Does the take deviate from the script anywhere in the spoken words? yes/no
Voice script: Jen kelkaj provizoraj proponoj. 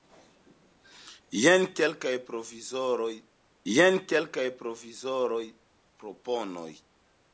yes